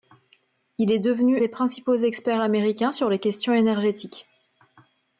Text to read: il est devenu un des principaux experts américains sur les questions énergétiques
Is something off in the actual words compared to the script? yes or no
yes